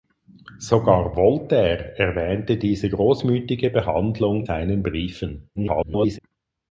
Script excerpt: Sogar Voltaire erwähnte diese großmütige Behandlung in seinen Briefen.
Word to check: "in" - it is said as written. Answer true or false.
false